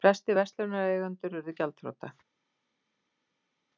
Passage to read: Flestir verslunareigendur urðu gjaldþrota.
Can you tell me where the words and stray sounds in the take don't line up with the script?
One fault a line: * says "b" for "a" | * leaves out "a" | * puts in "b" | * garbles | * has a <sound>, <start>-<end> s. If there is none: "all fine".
all fine